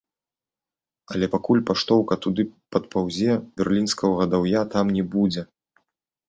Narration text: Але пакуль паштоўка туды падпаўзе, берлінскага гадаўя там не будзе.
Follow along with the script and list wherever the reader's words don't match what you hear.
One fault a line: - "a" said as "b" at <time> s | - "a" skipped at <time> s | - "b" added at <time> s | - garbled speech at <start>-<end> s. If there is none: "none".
none